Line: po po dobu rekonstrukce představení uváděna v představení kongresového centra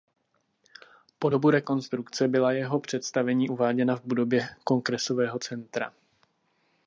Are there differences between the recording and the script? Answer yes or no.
yes